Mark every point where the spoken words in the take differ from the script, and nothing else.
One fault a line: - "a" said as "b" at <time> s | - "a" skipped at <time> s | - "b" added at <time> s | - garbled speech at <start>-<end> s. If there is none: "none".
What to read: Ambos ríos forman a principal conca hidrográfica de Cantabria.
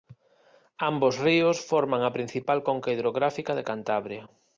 none